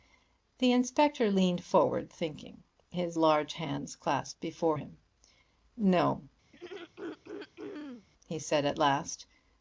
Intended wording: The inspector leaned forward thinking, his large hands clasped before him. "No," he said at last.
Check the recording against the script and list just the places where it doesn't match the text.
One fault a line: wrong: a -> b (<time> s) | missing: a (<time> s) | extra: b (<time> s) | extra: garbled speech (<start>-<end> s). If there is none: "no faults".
no faults